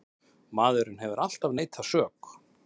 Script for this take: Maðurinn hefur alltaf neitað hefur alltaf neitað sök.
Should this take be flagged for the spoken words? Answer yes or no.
yes